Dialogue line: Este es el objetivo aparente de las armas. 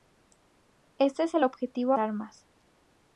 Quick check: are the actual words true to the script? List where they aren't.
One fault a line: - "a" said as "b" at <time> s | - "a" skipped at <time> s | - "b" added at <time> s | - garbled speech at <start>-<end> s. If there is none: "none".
- "aparente de las" skipped at 1.9 s